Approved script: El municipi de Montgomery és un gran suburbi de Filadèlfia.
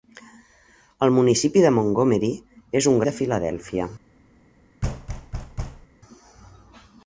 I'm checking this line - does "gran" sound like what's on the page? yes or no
no